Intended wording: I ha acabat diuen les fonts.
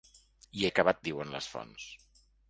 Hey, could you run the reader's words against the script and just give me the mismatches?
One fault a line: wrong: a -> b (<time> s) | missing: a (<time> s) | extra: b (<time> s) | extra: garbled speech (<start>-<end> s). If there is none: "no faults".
no faults